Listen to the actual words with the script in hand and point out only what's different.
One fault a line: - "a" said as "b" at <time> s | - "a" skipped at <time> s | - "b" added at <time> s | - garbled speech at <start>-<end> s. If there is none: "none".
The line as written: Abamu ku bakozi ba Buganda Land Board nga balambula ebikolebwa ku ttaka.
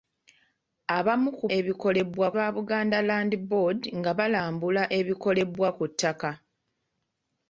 - "bakozi" said as "ebikolebwa" at 1.6 s